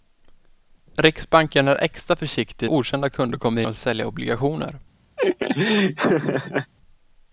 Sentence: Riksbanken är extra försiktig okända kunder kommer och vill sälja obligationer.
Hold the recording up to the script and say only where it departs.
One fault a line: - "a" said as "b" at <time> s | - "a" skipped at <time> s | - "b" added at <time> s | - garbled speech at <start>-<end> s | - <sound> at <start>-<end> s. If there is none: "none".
- laugh at 5.2-6.7 s